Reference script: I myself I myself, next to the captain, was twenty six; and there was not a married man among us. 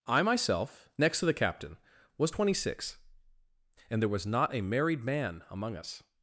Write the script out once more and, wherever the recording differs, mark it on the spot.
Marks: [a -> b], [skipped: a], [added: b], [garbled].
I myself [skipped: I myself,] next to the captain, was twenty six; and there was not a married man among us.